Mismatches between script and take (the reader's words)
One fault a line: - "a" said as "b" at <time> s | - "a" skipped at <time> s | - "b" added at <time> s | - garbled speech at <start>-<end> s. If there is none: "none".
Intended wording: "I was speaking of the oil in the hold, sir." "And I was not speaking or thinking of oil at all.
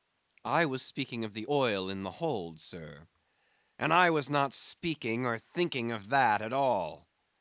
- "oil" said as "that" at 6.1 s